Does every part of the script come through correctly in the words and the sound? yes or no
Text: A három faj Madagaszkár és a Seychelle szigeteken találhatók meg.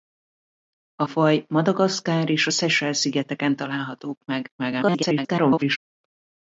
no